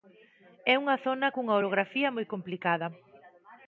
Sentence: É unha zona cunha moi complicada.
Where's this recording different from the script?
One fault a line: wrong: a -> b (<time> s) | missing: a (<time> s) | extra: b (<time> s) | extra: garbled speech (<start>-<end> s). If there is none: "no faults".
extra: orografía (1.6 s)